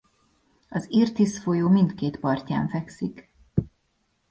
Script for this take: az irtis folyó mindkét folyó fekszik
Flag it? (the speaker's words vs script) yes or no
yes